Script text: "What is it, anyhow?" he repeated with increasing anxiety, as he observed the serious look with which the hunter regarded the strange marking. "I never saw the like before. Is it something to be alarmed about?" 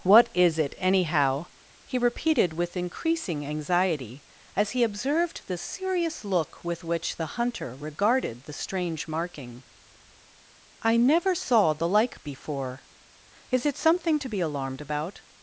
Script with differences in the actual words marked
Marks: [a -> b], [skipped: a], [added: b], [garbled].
"What is it, anyhow?" he repeated with increasing anxiety, as he observed the serious look with which the hunter regarded the strange marking. "I never saw the like before. Is it something to be alarmed about?"